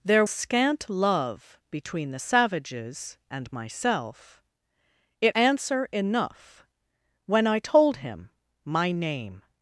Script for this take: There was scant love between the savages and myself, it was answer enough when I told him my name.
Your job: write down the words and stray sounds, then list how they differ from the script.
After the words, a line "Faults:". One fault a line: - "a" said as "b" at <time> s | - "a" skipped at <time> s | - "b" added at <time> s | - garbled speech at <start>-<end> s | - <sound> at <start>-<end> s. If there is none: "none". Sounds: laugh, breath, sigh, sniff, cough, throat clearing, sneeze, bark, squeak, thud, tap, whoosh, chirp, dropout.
There scant love between the savages and myself, it answer enough when I told him my name.
Faults:
- "was" skipped at 0.2 s
- "was" skipped at 5.3 s